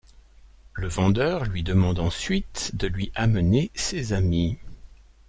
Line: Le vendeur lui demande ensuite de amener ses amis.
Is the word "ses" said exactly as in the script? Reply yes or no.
yes